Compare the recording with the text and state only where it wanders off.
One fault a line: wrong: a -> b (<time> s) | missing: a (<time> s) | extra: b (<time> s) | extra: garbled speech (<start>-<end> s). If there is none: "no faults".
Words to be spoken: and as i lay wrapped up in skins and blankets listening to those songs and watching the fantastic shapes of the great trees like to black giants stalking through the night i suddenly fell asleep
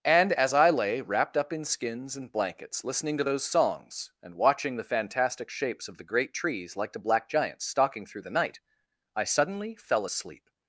no faults